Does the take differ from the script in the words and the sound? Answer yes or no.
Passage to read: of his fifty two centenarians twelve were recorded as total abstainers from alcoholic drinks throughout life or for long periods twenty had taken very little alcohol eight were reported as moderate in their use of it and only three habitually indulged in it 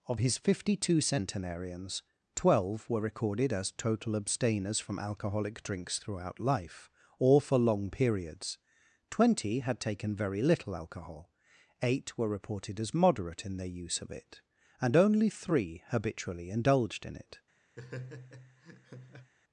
yes